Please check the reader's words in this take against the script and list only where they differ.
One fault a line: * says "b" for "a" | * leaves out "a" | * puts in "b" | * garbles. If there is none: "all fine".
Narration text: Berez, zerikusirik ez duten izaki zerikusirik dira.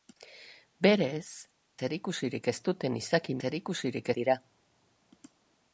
all fine